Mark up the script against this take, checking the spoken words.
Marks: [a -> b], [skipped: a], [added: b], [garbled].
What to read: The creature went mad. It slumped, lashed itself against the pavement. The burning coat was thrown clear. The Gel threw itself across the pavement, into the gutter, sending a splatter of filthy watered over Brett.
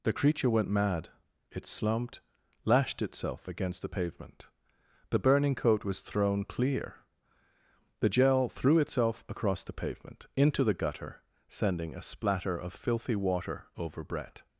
The creature went mad. It slumped, lashed itself against the pavement. The burning coat was thrown clear. The Gel threw itself across the pavement, into the gutter, sending a splatter of filthy [watered -> water] over Brett.